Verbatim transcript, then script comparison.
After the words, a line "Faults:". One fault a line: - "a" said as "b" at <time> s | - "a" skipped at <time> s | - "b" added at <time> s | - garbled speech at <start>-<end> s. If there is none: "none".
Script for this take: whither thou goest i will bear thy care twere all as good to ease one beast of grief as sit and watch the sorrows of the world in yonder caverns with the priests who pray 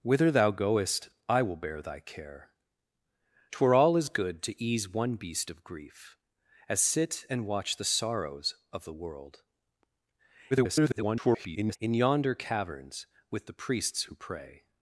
whither thou goest i will bear thy care twere all as good to ease one beast of grief as sit and watch the sorrows of the world [garbled] in yonder caverns with the priests who pray
Faults:
- garbled speech at 10.5-11.8 s